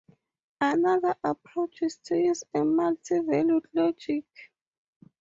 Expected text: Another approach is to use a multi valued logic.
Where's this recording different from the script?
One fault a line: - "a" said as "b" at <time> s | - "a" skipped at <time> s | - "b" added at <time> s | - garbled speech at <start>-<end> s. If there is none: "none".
none